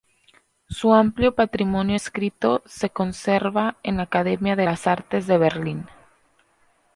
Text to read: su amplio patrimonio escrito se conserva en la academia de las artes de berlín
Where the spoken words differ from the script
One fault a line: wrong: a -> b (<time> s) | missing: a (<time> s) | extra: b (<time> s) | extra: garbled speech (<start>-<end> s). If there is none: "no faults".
no faults